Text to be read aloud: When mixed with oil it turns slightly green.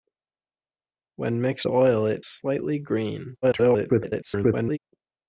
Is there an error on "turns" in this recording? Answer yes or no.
yes